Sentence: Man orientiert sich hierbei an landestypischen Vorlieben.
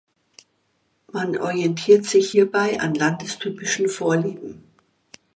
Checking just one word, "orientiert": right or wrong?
right